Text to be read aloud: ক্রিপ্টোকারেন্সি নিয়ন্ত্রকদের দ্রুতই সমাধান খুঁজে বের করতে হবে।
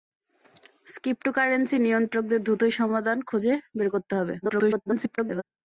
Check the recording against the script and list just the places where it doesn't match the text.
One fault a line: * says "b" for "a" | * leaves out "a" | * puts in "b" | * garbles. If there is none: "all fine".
* garbles